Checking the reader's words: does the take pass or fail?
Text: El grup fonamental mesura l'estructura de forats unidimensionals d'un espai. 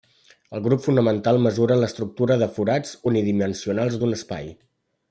pass